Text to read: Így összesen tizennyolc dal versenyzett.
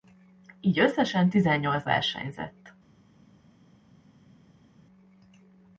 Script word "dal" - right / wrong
wrong